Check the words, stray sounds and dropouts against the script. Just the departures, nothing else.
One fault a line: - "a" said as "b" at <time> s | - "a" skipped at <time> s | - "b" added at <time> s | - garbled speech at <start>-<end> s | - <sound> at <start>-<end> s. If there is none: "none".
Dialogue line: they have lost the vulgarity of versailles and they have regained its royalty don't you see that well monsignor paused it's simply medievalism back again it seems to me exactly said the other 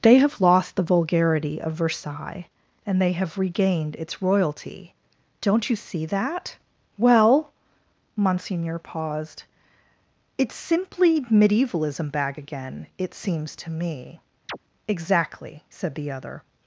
- "back" said as "bag" at 12.1 s
- chirp at 14.5-14.6 s